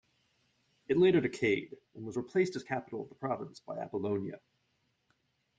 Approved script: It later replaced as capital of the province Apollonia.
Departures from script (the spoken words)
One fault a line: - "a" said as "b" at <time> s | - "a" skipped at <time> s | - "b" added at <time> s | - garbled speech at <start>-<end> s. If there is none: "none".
- "decayed and was" added at 1.2 s
- "by" added at 3.6 s